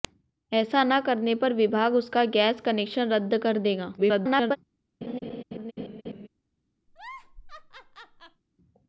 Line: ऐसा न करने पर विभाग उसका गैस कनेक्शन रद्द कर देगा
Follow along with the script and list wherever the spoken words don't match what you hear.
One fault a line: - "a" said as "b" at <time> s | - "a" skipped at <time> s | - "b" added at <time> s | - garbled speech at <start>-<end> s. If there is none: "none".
- garbled speech at 4.0-4.6 s